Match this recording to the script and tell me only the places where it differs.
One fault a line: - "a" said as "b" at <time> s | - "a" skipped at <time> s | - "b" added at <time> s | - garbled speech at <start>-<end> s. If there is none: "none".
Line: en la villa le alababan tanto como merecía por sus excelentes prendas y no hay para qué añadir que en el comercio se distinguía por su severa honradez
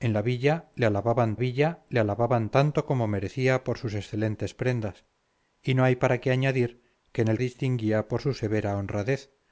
- "villa le alababan" added at 1.4 s
- "comercio se" skipped at 7.4 s